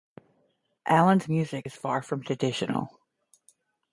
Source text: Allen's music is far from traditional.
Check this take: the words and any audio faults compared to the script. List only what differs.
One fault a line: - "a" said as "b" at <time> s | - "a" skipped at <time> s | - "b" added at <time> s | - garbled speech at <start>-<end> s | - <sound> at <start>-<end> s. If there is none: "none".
none